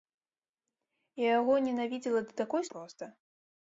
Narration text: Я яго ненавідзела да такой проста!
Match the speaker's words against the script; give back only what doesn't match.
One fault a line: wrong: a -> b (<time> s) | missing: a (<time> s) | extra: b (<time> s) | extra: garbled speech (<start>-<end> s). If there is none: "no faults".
no faults